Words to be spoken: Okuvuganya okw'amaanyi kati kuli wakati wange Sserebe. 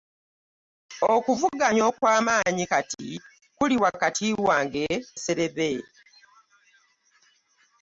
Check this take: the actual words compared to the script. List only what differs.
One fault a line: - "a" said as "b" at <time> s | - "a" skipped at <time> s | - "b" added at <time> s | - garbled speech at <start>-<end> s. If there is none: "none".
none